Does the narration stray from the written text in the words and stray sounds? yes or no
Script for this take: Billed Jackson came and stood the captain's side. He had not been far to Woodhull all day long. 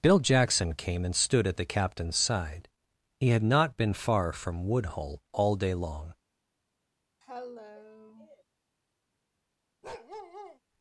yes